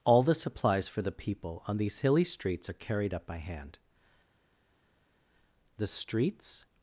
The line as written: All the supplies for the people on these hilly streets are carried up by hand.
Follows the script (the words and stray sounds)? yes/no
no